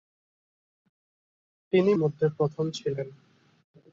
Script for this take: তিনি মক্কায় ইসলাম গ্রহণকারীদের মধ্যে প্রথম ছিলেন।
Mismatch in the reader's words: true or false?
true